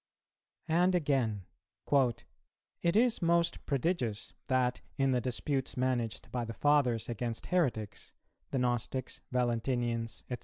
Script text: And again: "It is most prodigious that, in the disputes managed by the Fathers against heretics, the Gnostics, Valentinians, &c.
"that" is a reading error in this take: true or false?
false